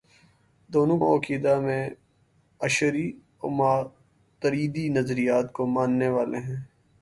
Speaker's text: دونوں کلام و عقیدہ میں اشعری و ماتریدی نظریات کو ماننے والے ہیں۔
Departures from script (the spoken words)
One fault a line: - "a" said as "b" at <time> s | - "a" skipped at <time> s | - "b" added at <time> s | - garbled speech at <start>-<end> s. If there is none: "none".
- "کلام" skipped at 1.0 s